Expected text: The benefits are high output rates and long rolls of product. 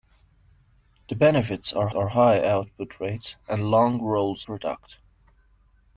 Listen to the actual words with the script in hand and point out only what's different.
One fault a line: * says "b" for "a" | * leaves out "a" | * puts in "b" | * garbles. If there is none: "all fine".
* puts in "are"
* leaves out "of"